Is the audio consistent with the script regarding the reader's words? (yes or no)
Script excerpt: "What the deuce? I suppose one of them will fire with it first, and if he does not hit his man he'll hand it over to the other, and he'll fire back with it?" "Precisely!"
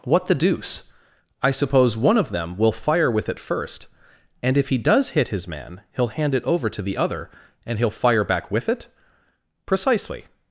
no